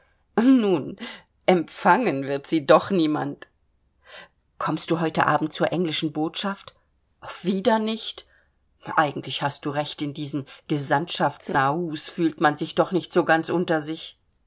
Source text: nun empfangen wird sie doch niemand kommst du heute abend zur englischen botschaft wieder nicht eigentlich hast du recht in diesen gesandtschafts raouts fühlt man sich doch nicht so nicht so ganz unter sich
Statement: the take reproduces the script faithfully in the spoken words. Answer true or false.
false